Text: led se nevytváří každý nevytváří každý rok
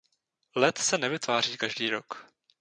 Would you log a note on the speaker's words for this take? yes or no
yes